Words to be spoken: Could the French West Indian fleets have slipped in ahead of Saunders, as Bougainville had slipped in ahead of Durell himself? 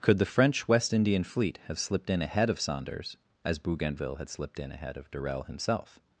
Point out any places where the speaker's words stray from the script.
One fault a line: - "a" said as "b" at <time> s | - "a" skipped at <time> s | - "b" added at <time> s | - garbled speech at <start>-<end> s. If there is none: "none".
- "fleets" said as "fleet" at 1.2 s